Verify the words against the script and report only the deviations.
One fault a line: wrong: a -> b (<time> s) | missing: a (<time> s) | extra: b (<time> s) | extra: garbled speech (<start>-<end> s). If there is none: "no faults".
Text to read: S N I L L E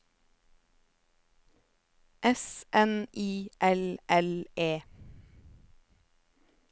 no faults